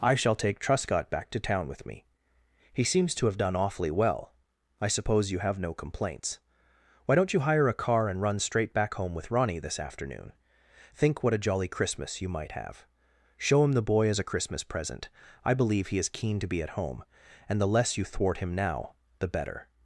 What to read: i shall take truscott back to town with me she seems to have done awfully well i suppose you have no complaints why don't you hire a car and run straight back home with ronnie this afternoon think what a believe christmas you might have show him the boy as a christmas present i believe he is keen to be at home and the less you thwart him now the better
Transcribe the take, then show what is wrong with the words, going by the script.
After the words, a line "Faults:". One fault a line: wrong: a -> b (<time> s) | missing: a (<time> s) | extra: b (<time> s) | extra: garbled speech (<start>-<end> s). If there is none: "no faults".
i shall take truscott back to town with me he seems to have done awfully well i suppose you have no complaints why don't you hire a car and run straight back home with ronnie this afternoon think what a jolly christmas you might have show him the boy as a christmas present i believe he is keen to be at home and the less you thwart him now the better
Faults:
wrong: she -> he (2.7 s)
wrong: believe -> jolly (11.4 s)